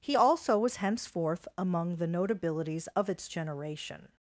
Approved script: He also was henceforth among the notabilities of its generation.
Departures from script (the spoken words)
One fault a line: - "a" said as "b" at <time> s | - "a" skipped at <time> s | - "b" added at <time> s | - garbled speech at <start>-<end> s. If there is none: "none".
none